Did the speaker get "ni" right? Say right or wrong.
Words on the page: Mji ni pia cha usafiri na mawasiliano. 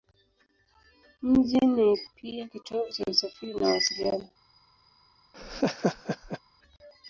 right